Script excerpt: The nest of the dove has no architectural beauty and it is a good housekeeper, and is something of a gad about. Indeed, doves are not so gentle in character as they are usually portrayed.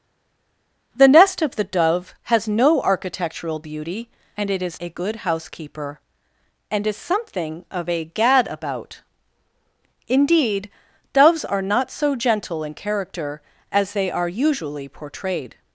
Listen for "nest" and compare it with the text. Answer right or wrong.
right